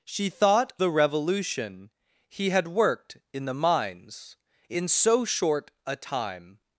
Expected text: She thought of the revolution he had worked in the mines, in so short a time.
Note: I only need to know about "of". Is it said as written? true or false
false